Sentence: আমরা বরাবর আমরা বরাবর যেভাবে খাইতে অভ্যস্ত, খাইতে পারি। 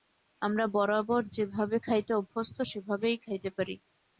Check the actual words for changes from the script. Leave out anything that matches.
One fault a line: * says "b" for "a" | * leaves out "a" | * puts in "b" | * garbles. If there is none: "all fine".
* leaves out "আমরা বরাবর"
* puts in "সেভাবেই"